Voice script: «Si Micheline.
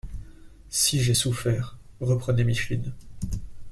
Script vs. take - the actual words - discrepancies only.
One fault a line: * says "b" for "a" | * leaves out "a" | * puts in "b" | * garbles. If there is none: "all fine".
* puts in "j'ai souffert reprenait"